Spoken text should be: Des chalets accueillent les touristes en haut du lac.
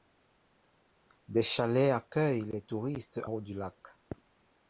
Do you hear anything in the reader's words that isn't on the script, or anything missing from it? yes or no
yes